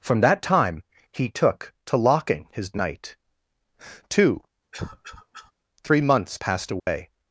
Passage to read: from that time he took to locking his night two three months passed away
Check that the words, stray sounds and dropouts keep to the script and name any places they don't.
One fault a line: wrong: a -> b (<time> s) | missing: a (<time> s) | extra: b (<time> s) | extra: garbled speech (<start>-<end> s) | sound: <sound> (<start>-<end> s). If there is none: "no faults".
sound: cough (4.7-5.5 s)
sound: dropout (6.8-6.9 s)